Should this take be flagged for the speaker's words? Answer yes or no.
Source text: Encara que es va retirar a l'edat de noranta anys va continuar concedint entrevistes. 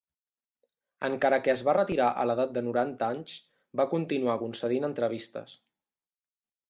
no